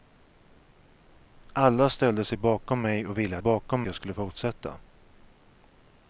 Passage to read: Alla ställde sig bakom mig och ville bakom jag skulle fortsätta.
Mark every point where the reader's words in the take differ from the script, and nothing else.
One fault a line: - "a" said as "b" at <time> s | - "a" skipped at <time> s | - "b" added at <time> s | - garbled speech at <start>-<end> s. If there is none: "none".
none